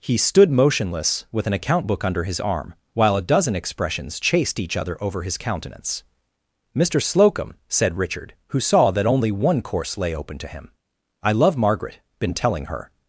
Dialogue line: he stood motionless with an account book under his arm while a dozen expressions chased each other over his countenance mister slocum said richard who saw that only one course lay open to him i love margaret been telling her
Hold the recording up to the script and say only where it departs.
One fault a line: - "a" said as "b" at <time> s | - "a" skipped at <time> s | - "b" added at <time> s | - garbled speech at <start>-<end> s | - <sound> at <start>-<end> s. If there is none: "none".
none